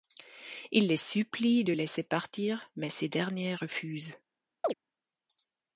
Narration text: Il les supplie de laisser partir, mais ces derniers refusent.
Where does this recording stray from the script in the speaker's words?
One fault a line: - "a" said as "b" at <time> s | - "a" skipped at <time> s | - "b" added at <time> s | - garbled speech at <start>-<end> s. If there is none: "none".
none